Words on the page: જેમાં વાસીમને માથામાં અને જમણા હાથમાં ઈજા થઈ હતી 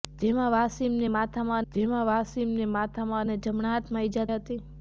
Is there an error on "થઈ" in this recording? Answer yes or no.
yes